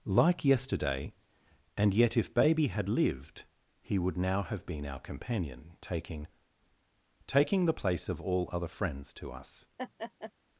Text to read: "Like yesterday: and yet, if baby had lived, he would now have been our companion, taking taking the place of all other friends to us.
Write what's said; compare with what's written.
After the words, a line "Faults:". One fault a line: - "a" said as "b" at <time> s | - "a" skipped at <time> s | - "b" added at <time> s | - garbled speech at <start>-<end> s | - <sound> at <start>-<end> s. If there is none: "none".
"Like yesterday: and yet, if baby had lived, he would now have been our companion, taking taking the place of all other friends to us.
Faults:
- laugh at 9.8-10.3 s